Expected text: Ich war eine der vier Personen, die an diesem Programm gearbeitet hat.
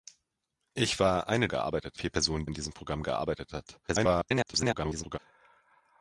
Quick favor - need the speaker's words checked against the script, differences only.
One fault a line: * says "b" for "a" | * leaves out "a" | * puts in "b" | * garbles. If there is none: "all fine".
* says "gearbeitet" for "der"
* leaves out "die"
* garbles